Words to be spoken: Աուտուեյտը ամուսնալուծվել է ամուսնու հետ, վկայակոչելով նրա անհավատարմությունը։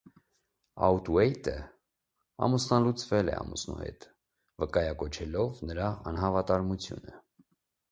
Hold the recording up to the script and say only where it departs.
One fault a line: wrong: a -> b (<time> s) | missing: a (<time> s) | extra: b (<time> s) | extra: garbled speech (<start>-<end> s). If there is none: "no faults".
no faults